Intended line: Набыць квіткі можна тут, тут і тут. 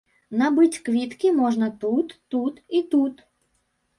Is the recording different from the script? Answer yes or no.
no